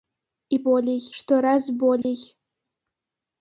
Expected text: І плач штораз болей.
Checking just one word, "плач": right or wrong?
wrong